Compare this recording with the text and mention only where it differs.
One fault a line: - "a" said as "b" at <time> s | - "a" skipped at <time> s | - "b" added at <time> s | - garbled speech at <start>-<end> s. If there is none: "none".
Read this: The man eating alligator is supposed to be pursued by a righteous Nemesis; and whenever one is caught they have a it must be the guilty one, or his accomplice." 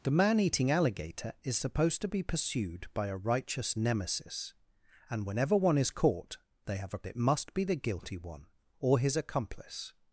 none